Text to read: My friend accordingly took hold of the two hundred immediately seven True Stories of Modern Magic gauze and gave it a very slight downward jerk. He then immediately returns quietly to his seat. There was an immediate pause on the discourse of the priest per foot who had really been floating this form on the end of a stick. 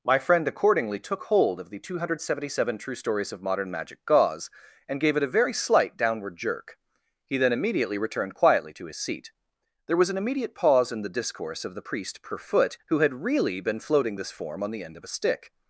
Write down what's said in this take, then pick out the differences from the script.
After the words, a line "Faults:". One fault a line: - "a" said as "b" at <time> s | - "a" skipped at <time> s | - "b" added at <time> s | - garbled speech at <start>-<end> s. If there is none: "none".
My friend accordingly took hold of the two hundred seventy seven True Stories of Modern Magic gauze and gave it a very slight downward jerk. He then immediately returned quietly to his seat. There was an immediate pause in the discourse of the priest per foot who had really been floating this form on the end of a stick.
Faults:
- "immediately" said as "seventy" at 2.2 s
- "returns" said as "returned" at 8.0 s
- "on" said as "in" at 10.9 s